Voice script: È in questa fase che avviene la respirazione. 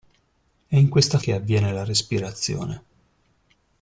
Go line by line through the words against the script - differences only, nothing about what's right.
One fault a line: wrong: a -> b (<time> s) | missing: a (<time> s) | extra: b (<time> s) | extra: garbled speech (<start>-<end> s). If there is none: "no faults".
missing: fase (1.2 s)